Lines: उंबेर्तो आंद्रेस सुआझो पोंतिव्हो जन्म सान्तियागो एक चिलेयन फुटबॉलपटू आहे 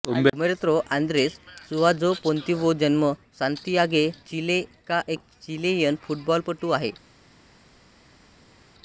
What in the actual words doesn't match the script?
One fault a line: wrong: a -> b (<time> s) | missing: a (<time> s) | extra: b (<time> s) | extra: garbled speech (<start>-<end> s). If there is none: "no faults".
extra: चिले हा (4.3 s)